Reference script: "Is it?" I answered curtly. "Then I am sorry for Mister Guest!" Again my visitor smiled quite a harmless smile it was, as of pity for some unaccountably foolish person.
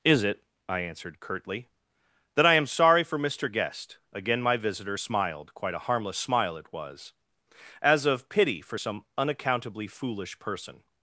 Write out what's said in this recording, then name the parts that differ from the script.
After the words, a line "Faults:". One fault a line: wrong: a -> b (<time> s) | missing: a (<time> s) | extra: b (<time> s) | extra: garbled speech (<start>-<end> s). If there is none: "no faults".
"Is it?" I answered curtly. "Then I am sorry for Mister Guest!" Again my visitor smiled quite a harmless smile it was, as of pity for some unaccountably foolish person.
Faults:
no faults